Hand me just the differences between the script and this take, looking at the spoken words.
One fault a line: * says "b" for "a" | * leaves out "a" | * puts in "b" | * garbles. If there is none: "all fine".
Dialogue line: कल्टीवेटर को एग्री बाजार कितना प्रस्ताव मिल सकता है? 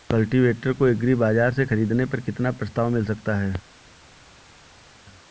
* puts in "से ख़रीदने पर"